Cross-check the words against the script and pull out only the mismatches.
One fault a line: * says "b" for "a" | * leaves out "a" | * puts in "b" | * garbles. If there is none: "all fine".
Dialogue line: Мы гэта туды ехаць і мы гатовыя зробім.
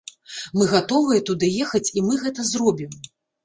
* says "гатовыя" for "гэта"
* says "гэта" for "гатовыя"